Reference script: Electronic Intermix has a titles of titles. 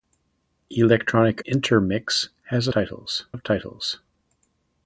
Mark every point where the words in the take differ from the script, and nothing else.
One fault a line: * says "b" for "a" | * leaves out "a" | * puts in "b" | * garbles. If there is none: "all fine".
all fine